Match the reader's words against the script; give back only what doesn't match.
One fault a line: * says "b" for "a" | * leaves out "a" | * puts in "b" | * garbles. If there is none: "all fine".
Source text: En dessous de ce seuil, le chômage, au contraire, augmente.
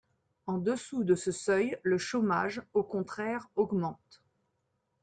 all fine